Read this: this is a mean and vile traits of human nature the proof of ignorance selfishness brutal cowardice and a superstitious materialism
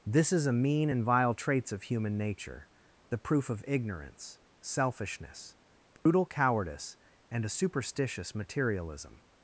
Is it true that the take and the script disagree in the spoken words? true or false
false